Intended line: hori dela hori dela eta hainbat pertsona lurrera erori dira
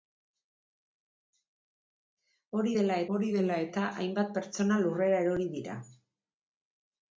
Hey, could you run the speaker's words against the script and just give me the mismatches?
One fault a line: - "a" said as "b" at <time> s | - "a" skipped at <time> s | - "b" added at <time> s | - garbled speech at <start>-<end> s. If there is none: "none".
none